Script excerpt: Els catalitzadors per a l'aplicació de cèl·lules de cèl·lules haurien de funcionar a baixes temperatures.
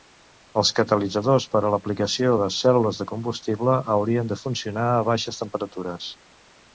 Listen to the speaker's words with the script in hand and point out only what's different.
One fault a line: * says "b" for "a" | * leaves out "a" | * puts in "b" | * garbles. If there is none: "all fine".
* says "combustible" for "cèl·lules"